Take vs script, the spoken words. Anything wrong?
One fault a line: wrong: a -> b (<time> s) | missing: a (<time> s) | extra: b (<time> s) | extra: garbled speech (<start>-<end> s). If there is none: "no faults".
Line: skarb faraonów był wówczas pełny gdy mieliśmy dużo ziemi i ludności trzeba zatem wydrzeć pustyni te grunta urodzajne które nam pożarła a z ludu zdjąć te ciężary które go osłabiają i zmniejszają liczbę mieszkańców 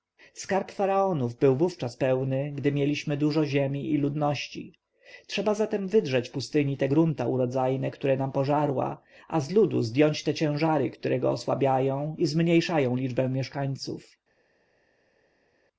no faults